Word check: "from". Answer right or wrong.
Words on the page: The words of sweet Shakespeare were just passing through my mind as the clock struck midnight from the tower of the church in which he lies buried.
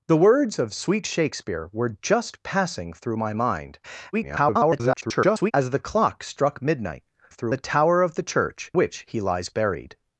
wrong